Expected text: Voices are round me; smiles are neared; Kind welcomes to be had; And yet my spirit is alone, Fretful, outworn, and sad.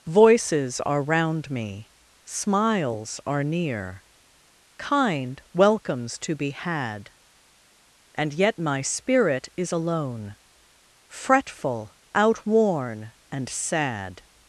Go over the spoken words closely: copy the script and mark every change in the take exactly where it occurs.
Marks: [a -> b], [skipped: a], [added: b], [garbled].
Voices are round me; smiles are [neared; -> near] Kind welcomes to be had; And yet my spirit is alone, Fretful, outworn, and sad.